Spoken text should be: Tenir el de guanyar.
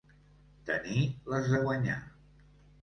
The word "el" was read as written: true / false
false